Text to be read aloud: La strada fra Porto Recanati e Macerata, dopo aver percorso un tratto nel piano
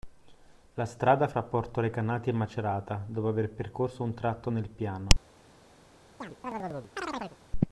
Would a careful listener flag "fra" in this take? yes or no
no